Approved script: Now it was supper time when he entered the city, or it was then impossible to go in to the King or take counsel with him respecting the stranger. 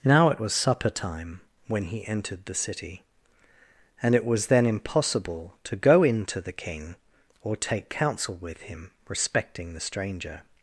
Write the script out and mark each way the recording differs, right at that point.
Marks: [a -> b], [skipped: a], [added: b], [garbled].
Now it was supper time when he entered the city, [or -> and] it was then impossible to go in to the King or take counsel with him respecting the stranger.